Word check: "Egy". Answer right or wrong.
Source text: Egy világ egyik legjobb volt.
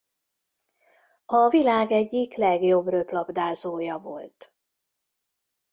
wrong